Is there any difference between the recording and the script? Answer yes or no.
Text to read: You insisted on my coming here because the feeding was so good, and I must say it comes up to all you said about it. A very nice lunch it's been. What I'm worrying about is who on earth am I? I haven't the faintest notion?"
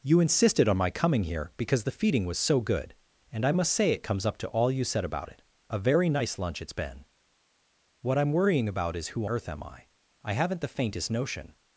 yes